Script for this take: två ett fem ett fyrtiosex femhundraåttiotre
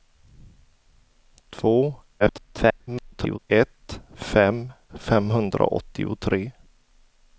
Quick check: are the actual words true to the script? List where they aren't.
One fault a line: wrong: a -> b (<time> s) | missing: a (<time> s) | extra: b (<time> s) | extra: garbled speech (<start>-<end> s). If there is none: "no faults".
extra: garbled speech (2.2-3.4 s)
missing: ett fyrtiosex (4.7 s)